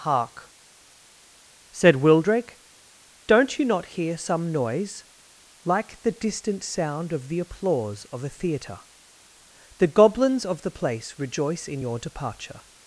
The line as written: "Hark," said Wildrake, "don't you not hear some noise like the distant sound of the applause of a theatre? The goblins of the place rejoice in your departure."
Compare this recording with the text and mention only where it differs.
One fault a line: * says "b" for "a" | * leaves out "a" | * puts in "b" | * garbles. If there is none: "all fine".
all fine